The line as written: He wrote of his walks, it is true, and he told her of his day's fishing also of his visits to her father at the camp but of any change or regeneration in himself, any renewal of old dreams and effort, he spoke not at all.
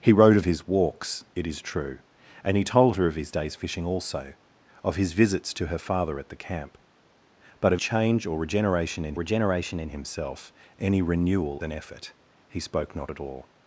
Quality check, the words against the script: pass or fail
fail